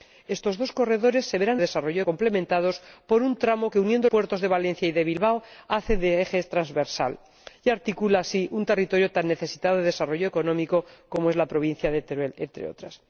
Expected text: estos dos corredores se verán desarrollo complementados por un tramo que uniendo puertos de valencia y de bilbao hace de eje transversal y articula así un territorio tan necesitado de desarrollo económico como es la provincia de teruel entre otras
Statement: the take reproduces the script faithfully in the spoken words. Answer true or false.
true